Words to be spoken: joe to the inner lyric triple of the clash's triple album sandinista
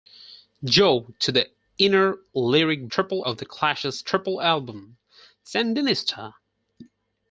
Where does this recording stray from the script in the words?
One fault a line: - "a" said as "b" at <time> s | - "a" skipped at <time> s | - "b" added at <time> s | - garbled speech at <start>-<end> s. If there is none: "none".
none